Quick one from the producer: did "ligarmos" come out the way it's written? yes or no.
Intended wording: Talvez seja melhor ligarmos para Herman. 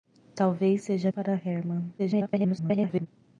no